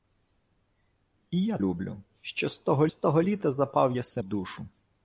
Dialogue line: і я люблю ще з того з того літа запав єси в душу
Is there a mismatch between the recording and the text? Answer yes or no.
no